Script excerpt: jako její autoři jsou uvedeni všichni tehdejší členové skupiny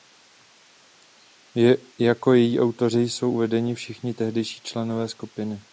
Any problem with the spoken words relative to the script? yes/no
no